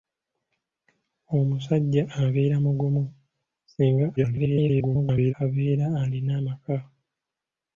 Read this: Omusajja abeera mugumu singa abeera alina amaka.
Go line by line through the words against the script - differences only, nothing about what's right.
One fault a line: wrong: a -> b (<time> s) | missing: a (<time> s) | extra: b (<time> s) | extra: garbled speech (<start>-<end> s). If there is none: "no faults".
extra: garbled speech (4.2-5.3 s)